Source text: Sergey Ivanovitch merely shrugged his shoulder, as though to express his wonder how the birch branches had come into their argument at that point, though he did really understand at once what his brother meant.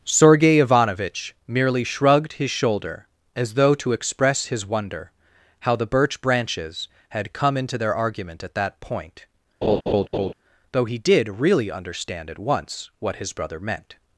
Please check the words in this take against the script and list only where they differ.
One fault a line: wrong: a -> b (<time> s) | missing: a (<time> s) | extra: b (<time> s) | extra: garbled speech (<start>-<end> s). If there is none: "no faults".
no faults